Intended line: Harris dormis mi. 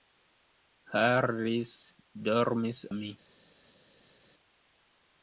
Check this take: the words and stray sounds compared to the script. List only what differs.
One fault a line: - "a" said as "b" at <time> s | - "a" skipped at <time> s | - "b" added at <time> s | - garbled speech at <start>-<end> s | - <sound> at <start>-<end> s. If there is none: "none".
none